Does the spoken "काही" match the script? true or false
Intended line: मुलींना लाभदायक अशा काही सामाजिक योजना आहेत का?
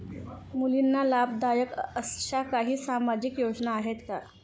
true